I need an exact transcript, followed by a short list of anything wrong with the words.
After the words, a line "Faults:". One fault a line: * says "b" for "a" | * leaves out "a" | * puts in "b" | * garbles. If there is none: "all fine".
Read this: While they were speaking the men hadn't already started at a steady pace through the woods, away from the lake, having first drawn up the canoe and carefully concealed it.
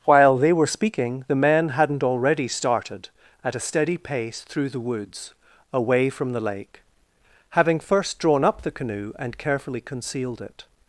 While they were speaking the men hadn't already started at a steady pace through the woods, away from the lake, having first drawn up the canoe and carefully concealed it.
Faults:
all fine